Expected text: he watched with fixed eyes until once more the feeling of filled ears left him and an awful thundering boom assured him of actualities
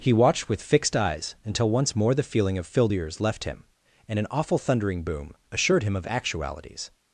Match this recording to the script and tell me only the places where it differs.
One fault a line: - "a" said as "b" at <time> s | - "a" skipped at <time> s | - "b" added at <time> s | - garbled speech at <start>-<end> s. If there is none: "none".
none